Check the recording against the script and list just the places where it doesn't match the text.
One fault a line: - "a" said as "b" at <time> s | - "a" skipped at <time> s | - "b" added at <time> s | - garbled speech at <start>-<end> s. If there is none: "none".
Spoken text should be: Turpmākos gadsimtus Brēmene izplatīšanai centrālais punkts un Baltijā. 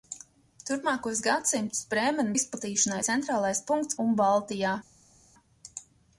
none